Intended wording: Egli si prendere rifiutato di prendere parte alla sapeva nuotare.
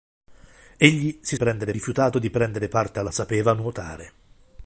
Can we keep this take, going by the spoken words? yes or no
yes